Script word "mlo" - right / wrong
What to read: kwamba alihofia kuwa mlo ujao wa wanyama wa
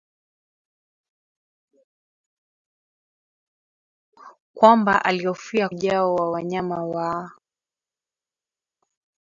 wrong